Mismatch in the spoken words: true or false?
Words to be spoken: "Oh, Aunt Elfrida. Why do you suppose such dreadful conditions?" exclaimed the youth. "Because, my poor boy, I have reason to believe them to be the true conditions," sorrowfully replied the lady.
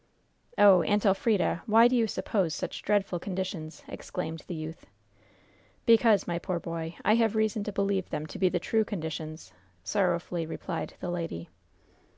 false